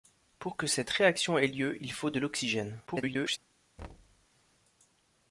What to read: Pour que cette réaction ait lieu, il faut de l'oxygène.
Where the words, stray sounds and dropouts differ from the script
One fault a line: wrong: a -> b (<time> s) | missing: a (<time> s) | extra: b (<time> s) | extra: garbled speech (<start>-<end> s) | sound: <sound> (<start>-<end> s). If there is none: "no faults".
extra: garbled speech (2.9-3.4 s)
sound: thud (3.8-4.3 s)